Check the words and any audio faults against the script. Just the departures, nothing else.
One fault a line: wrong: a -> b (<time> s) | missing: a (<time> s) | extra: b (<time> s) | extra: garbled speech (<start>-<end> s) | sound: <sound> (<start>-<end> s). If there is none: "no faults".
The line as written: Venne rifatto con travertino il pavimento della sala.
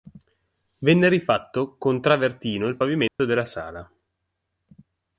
sound: dropout (3.1-3.2 s)